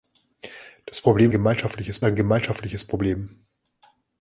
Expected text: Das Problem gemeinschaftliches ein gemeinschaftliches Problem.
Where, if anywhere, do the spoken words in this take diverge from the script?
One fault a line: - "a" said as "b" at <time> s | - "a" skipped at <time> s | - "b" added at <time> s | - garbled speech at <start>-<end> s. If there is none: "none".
none